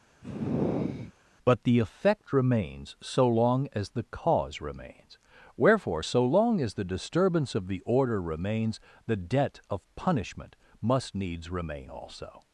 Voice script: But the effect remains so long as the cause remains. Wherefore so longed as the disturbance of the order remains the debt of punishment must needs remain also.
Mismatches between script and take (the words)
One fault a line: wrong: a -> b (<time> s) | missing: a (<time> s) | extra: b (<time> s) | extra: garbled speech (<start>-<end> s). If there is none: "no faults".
wrong: longed -> long (6.2 s)